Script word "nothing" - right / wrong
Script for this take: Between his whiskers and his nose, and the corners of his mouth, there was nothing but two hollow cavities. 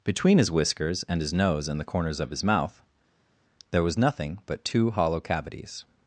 right